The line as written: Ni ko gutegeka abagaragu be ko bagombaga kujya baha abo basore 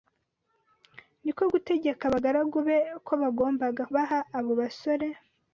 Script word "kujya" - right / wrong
wrong